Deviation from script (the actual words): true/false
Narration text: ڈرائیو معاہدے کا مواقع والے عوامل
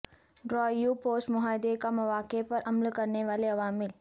true